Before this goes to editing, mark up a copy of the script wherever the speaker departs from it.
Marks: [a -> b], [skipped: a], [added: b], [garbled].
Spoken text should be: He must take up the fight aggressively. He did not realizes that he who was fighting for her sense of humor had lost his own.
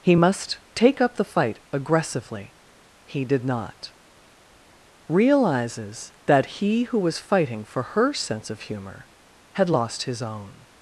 He must take up the fight aggressively. He did not realizes that he who was fighting for her sense of humor had lost his own.